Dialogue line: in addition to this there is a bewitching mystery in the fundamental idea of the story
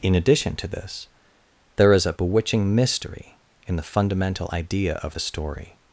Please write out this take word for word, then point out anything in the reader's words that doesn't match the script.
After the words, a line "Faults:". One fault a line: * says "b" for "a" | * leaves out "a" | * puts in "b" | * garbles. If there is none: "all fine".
in addition to this there is a bewitching mystery in the fundamental idea of the story
Faults:
all fine